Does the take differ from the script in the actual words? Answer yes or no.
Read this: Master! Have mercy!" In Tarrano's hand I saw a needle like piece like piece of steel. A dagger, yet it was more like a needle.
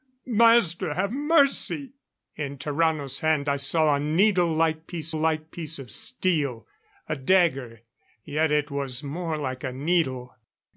no